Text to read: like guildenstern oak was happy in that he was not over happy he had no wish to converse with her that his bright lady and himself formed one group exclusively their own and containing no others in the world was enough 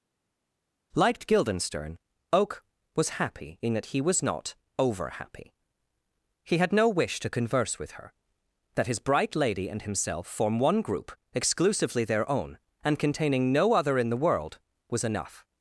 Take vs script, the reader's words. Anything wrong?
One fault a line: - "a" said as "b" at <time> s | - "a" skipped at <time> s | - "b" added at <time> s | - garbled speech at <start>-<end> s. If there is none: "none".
- "formed" said as "form" at 10.3 s
- "others" said as "other" at 13.7 s